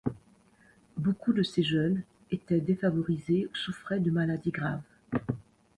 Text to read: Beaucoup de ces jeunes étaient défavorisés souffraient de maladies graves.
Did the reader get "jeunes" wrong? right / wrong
right